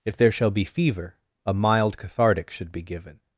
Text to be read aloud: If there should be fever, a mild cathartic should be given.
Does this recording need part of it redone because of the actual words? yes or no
yes